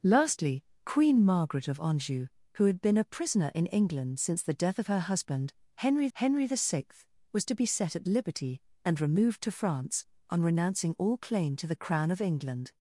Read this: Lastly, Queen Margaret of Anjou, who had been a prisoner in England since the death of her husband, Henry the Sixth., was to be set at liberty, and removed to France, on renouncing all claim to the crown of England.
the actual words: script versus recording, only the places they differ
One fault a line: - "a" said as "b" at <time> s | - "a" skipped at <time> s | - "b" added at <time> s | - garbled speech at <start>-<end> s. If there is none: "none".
- "Henry" added at 6.1 s